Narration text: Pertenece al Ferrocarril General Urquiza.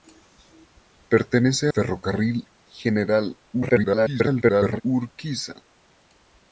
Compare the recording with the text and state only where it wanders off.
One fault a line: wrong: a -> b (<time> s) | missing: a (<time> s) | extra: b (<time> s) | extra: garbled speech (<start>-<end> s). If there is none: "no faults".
missing: al (1.7 s)
extra: garbled speech (3.5-4.8 s)